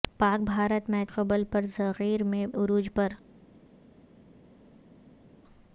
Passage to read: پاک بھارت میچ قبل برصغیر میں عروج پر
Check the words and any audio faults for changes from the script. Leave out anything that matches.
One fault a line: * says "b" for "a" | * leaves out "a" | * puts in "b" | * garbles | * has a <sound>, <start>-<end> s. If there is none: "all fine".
all fine